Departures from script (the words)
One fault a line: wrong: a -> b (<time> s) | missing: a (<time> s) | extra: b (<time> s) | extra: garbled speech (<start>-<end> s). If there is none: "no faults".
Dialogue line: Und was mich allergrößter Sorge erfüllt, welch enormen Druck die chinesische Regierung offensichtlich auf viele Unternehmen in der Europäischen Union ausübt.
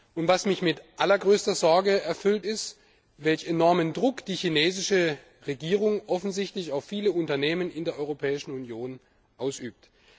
extra: mit (0.6 s)
extra: ist (2.4 s)